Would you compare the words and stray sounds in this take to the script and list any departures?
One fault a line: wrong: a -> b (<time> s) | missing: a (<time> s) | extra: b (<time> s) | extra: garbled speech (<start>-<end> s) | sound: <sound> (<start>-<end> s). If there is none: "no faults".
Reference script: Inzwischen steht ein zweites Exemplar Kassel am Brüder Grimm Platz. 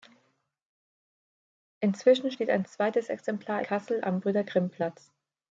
no faults